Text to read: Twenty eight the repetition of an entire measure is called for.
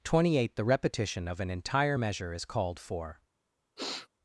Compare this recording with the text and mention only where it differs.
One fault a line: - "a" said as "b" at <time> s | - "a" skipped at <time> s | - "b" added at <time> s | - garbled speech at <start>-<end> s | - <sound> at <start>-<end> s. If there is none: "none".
- sniff at 3.8-4.1 s